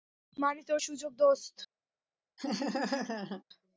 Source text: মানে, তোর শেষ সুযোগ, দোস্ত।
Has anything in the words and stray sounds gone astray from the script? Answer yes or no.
yes